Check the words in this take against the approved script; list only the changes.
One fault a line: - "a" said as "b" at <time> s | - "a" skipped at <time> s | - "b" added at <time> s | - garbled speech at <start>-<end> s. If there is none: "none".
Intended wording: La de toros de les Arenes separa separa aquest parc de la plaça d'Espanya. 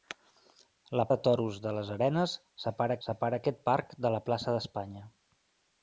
none